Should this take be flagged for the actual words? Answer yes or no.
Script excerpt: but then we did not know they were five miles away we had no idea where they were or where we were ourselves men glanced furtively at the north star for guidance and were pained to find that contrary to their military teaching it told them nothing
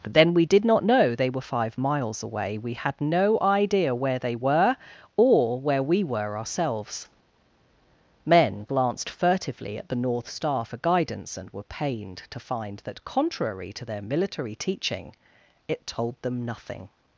no